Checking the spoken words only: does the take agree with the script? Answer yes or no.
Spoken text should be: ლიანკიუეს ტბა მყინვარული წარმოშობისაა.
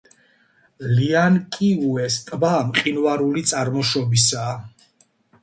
yes